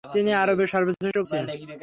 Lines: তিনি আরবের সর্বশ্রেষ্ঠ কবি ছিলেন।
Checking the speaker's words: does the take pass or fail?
fail